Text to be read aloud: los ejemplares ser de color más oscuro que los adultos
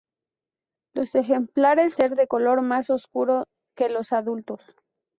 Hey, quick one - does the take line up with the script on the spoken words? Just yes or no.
yes